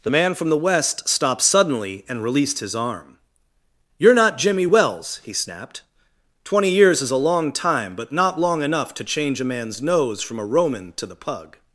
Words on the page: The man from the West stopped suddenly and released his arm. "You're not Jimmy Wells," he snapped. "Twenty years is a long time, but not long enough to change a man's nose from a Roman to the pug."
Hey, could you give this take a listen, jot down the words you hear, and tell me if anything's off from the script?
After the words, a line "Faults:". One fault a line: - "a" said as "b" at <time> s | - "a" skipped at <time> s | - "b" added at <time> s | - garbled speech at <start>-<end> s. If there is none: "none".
The man from the West stopped suddenly and released his arm. "You're not Jimmy Wells," he snapped. "Twenty years is a long time, but not long enough to change a man's nose from a Roman to the pug."
Faults:
none